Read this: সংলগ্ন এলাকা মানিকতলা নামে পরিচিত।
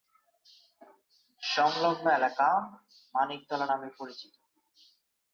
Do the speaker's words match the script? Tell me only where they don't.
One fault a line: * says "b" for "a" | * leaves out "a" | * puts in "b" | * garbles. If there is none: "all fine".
all fine